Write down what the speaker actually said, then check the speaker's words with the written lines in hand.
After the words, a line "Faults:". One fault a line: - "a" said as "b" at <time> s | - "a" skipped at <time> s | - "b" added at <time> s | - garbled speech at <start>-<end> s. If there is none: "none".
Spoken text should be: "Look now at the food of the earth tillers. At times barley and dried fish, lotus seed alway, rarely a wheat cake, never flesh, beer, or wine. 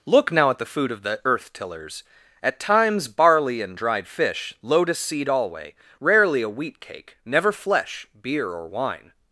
"Look now at the food of the earth tillers. At times barley and dried fish, lotus seed alway, rarely a wheat cake, never flesh, beer, or wine.
Faults:
none